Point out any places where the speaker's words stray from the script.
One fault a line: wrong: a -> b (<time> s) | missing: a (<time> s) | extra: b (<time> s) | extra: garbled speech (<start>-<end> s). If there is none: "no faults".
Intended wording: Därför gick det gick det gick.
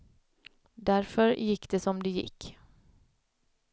wrong: gick -> som (1.8 s)